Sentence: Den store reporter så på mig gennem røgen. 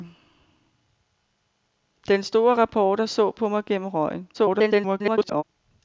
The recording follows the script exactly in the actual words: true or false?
false